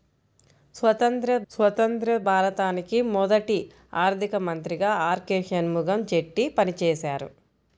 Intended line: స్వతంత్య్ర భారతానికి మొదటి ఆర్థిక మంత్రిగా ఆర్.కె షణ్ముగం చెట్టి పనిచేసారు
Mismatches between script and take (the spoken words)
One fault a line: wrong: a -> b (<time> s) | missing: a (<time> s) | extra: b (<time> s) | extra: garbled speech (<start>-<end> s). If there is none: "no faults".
extra: స్వతంత్య్ర (1.5 s)